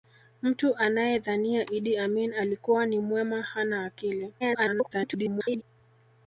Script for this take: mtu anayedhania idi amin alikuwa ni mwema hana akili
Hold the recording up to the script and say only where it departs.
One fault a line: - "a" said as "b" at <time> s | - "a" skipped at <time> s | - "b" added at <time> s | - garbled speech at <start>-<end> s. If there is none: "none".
- garbled speech at 4.4-5.6 s